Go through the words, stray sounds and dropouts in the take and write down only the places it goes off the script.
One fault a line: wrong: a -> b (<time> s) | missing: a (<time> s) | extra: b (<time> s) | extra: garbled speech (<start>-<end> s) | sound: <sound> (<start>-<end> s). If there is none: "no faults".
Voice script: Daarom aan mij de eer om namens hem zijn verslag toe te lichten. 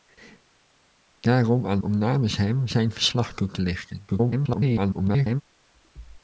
missing: mij de eer (1.8 s)
extra: garbled speech (4.1-5.4 s)